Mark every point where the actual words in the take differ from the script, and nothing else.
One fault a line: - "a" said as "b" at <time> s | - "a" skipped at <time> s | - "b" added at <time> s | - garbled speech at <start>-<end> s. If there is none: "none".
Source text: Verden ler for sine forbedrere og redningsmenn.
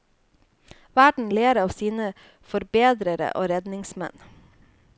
- "for" said as "av" at 1.6 s